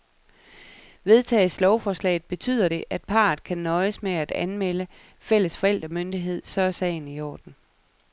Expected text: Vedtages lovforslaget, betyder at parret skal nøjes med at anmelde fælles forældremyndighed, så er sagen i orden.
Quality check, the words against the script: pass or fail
fail